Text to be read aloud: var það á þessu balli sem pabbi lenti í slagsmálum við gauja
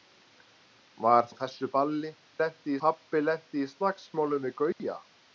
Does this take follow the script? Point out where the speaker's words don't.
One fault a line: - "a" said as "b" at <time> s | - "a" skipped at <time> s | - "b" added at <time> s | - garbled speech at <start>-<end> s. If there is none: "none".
- "það" skipped at 1.3 s
- "sem" said as "lenti" at 2.4 s